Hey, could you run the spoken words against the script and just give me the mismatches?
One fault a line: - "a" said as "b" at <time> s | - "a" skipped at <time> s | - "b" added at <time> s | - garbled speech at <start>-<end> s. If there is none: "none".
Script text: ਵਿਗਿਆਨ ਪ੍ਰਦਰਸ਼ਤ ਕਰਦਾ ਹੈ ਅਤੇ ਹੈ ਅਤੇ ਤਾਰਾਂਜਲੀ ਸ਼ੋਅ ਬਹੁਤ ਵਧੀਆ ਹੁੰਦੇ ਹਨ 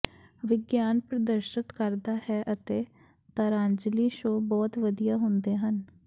- "ਹੈ ਅਤੇ" skipped at 2.8 s